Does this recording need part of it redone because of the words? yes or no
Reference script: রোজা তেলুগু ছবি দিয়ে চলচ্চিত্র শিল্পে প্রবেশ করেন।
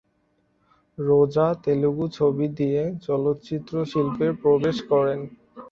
no